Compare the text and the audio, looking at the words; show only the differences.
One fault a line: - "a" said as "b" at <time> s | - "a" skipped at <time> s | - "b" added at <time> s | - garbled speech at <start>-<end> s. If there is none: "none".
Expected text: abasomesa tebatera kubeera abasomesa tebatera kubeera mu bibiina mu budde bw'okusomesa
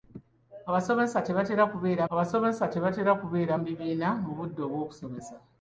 none